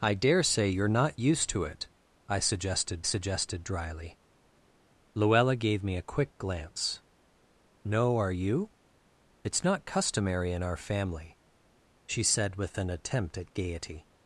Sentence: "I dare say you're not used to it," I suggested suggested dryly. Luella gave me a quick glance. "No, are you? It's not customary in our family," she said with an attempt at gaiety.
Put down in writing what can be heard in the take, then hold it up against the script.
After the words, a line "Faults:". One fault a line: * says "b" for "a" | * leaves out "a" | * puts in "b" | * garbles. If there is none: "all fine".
"I dare say you're not used to it," I suggested suggested dryly. Luella gave me a quick glance. "No, are you? It's not customary in our family," she said with an attempt at gaiety.
Faults:
all fine